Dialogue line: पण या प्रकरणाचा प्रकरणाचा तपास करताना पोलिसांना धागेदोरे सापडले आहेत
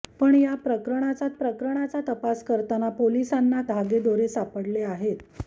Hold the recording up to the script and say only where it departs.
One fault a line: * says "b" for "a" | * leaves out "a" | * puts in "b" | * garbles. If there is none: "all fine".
all fine